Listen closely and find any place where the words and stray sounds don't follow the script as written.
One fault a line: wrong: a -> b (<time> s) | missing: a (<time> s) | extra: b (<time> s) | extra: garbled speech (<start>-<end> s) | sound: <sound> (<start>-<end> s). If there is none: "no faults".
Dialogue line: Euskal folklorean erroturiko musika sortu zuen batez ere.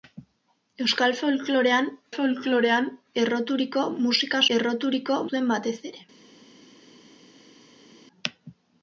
extra: folklorean (2.1 s)
wrong: sortu -> erroturiko (4.6 s)